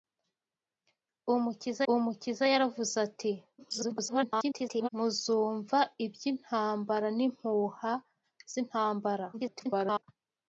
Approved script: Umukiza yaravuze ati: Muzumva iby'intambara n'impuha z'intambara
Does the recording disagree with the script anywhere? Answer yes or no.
yes